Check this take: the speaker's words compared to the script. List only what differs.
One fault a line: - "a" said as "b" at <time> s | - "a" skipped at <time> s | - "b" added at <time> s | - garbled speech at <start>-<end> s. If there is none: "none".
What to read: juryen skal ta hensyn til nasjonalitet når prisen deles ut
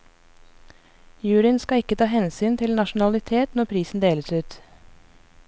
- "ikke" added at 1.8 s